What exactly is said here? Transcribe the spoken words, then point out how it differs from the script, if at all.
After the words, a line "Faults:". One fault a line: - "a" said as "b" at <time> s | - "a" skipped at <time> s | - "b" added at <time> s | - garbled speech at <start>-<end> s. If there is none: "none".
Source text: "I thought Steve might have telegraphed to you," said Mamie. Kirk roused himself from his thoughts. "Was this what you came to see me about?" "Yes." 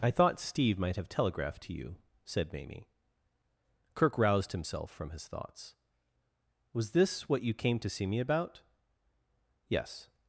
"I thought Steve might have telegraphed to you," said Mamie. Kirk roused himself from his thoughts. "Was this what you came to see me about?" "Yes."
Faults:
none